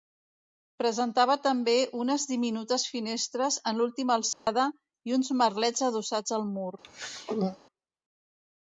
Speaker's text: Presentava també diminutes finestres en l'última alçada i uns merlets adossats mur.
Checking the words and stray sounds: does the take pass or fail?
fail